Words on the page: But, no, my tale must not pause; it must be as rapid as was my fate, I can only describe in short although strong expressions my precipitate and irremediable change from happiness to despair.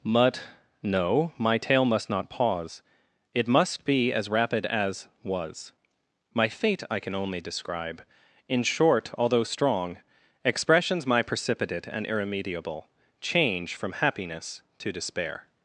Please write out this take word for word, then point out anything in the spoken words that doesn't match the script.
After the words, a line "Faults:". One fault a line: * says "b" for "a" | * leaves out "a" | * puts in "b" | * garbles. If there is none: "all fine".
But, no, my tale must not pause; it must be as rapid as was my fate, I can only describe in short although strong expressions my precipitate and irremediable change from happiness to despair.
Faults:
all fine